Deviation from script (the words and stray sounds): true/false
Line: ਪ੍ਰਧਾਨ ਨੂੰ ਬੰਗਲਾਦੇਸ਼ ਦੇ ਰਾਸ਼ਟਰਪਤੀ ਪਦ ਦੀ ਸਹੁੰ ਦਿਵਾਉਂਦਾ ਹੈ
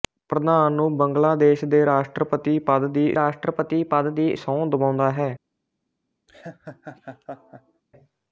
true